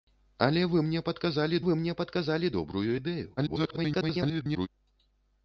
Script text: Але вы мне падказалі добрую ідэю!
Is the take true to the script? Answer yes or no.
no